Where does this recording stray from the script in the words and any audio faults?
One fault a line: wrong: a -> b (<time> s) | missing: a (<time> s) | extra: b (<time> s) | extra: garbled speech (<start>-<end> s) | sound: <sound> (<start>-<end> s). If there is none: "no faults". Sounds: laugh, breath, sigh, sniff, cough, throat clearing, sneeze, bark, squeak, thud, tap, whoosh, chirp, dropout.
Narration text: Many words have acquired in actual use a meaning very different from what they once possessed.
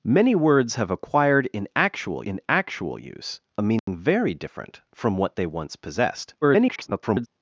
extra: in actual (2.3 s)
sound: dropout (3.8-3.9 s)
extra: garbled speech (6.4-7.3 s)